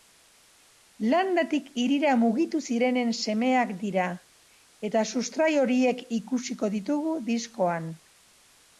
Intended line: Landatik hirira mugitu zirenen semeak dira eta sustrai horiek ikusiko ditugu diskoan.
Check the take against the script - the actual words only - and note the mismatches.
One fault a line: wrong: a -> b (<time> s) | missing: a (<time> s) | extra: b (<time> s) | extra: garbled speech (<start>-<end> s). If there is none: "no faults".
no faults